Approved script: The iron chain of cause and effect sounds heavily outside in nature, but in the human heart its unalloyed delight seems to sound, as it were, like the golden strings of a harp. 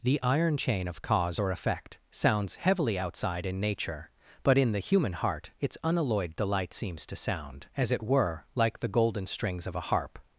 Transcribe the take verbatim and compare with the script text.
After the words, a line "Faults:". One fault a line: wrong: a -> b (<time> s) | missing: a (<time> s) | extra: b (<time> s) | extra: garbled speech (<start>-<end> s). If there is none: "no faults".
The iron chain of cause or effect sounds heavily outside in nature, but in the human heart its unalloyed delight seems to sound, as it were, like the golden strings of a harp.
Faults:
wrong: and -> or (1.4 s)